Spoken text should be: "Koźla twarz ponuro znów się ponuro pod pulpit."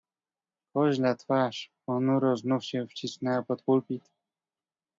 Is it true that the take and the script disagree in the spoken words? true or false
true